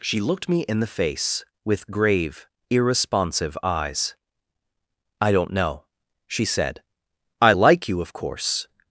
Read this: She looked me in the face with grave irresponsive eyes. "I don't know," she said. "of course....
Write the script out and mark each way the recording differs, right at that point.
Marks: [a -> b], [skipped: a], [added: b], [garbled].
She looked me in the face with grave irresponsive eyes. "I don't know," she said. [added: I like you] "of course....